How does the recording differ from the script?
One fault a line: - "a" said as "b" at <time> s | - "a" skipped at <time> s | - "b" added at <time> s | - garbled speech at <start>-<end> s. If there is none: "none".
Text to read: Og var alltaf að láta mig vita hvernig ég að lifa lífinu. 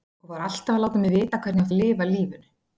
none